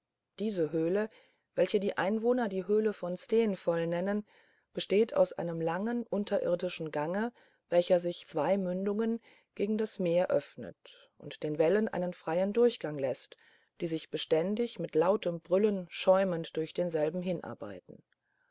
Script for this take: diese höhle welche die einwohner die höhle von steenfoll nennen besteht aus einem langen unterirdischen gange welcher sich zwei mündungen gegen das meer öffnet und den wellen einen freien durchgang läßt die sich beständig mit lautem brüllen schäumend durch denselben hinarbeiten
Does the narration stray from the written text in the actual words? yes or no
no